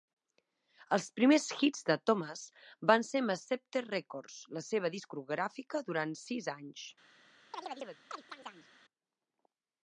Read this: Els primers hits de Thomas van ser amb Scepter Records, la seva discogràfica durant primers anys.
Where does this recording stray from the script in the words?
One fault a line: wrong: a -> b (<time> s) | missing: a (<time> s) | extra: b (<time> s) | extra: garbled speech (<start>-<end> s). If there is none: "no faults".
wrong: primers -> sis (6.3 s)